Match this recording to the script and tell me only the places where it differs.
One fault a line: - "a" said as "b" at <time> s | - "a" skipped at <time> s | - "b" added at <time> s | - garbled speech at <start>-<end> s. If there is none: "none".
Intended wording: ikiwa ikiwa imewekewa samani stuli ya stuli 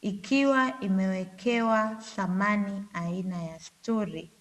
- "ikiwa" skipped at 0.8 s
- "stuli" said as "aina" at 2.9 s